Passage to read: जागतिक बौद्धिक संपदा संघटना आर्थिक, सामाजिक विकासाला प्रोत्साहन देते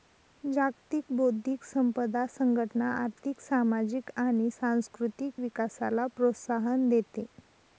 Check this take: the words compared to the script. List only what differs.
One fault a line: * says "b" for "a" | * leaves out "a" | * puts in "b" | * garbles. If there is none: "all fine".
* puts in "आणि सांस्कृतिक"